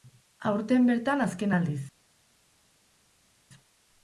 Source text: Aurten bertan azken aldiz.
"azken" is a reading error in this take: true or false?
false